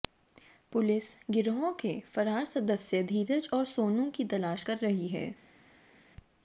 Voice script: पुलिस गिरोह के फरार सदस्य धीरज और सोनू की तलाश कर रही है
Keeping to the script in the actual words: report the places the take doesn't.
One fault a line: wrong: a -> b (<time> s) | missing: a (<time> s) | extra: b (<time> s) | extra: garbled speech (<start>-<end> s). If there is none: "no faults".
no faults